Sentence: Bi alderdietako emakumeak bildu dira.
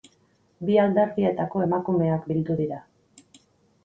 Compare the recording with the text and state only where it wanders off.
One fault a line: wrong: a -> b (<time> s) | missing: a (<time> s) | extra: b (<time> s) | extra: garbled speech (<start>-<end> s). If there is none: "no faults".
no faults